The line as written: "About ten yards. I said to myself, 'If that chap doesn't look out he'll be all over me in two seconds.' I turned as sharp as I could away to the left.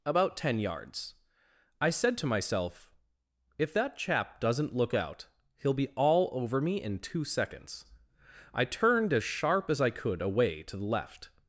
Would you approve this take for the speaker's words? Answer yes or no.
yes